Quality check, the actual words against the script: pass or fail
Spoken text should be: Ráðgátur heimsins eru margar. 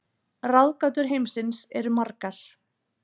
pass